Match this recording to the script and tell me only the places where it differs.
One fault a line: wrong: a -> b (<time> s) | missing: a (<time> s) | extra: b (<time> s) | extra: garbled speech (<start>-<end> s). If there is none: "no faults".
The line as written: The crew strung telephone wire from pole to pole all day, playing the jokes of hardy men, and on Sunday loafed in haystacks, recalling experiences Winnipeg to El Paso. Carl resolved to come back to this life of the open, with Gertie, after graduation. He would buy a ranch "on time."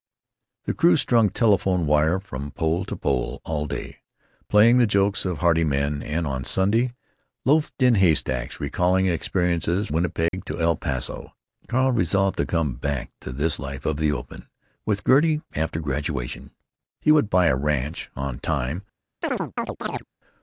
no faults